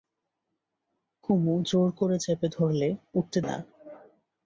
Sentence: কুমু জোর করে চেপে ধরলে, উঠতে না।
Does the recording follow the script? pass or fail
pass